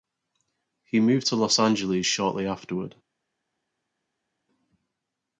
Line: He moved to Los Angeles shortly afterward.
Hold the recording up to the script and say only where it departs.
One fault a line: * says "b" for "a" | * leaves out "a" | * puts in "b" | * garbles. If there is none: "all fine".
all fine